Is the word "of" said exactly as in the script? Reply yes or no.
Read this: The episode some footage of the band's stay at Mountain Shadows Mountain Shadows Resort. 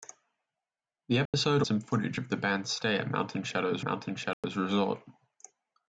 yes